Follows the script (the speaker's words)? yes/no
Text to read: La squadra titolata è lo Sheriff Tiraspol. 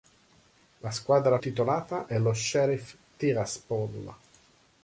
yes